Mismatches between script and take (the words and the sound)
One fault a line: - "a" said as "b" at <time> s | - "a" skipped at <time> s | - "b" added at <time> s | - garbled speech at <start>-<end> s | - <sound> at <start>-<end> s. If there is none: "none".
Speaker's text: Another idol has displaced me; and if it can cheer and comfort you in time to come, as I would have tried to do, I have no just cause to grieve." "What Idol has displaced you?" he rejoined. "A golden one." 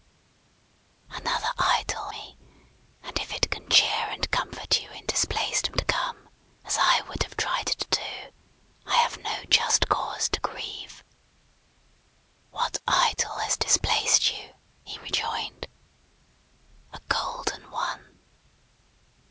- "has displaced" skipped at 2.1 s
- "time" said as "displaced" at 5.0 s